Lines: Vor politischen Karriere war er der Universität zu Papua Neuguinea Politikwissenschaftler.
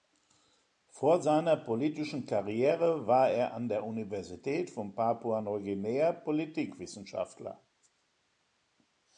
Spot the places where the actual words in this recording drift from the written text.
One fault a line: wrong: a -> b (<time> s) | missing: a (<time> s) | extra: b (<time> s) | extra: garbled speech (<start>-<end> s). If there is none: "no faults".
extra: seiner (1.2 s)
extra: an (3.5 s)
wrong: zu -> von (4.7 s)